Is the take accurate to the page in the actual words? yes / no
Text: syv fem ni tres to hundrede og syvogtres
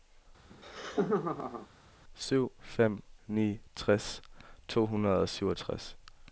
yes